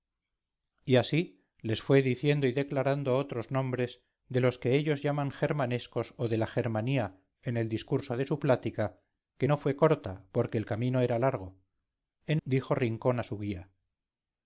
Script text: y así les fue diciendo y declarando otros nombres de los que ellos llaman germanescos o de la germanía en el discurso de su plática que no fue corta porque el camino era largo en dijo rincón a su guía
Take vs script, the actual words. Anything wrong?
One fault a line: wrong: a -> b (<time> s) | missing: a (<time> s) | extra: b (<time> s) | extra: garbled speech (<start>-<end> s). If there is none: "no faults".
no faults